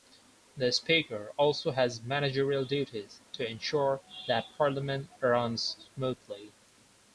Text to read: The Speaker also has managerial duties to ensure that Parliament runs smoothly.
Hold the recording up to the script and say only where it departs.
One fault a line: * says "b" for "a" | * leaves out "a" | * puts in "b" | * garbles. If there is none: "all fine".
all fine